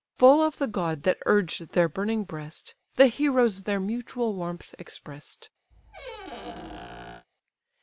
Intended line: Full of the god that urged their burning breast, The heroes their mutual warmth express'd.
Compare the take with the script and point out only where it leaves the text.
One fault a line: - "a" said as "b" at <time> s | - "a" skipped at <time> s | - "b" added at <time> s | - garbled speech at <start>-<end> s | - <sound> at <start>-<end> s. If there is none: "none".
- squeak at 5.7-7.3 s